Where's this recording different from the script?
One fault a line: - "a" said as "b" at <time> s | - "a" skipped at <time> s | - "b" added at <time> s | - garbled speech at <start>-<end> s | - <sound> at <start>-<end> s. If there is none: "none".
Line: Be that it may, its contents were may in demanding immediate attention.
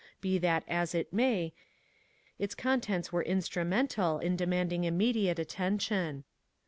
- "as" added at 0.7 s
- "may" said as "instrumental" at 3.2 s